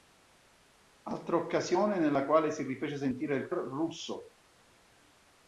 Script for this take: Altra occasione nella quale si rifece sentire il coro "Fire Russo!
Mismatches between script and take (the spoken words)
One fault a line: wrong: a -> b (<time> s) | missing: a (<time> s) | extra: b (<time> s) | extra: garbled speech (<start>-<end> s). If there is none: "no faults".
missing: coro Fire (3.5 s)